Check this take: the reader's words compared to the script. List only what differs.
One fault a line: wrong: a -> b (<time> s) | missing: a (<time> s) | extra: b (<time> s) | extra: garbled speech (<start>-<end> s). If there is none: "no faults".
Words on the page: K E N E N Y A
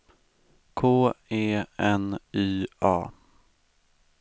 missing: E N (2.2 s)